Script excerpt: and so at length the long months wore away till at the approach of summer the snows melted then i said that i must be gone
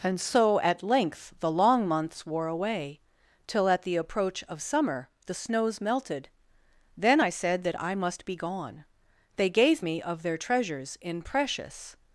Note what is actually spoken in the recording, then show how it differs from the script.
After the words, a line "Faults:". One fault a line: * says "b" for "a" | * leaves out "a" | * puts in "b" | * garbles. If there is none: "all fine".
and so at length the long months wore away till at the approach of summer the snows melted then i said that i must be gone they gave me of their treasures in precious
Faults:
* puts in "they gave me of their treasures in precious"